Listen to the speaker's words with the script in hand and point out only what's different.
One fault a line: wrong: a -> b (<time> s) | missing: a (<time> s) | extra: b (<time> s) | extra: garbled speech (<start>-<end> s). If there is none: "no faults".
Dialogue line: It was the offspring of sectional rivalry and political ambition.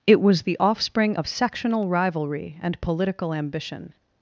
no faults